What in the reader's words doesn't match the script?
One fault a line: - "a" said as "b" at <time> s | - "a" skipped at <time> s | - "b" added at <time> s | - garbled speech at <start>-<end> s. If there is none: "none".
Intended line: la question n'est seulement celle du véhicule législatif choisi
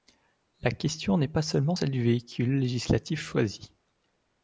- "pas" added at 1.3 s